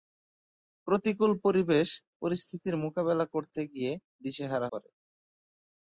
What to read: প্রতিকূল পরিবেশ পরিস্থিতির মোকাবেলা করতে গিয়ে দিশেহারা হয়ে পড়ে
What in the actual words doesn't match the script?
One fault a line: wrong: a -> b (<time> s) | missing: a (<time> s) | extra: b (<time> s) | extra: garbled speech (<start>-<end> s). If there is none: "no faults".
missing: হয়ে (4.7 s)